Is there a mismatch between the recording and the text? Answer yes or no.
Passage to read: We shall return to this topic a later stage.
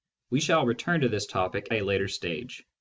no